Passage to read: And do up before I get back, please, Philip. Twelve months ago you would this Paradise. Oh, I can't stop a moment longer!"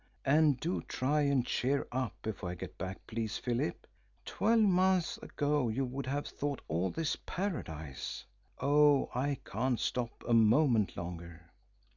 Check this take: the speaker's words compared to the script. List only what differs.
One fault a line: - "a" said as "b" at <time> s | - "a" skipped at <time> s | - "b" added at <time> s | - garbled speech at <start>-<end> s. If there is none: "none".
- "try and cheer" added at 0.8 s
- "have thought all" added at 6.1 s